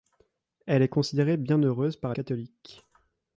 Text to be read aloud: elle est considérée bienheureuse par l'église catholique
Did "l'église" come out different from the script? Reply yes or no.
yes